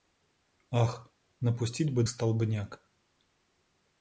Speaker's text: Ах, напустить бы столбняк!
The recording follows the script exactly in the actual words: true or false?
true